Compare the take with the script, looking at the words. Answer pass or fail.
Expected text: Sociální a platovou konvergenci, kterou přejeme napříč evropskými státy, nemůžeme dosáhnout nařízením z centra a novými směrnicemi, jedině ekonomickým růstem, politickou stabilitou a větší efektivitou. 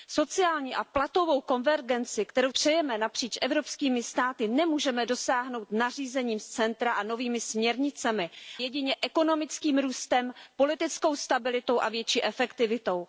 pass